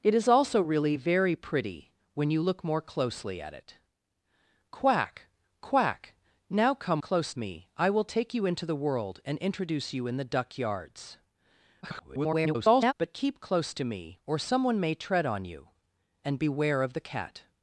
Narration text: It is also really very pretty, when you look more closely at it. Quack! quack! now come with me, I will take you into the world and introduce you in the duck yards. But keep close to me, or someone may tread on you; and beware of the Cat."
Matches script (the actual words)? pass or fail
fail